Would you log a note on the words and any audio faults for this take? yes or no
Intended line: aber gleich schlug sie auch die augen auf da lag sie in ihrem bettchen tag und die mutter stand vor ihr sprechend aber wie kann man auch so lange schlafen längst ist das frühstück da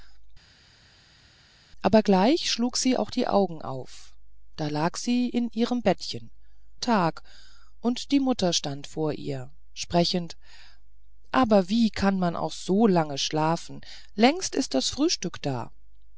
no